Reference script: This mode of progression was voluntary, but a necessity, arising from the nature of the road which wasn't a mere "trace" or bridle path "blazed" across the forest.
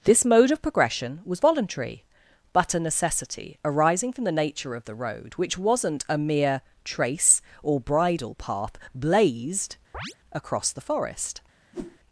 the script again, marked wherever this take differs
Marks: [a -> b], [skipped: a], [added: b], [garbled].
This mode of progression was voluntary, but a necessity, arising from the nature of the road which wasn't a mere "trace" or bridle path "blazed" across the forest.